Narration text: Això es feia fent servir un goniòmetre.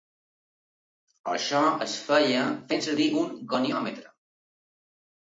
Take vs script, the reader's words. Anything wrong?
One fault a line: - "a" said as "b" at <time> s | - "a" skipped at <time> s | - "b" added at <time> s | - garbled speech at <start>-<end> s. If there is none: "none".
none